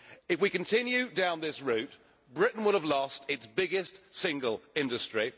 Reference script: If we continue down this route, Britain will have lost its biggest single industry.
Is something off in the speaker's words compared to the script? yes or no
no